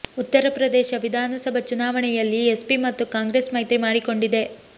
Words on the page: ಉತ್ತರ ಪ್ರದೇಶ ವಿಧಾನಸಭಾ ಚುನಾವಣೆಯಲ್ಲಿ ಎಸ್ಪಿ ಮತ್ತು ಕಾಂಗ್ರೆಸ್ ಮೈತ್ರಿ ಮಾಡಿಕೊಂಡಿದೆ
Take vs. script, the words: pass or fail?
pass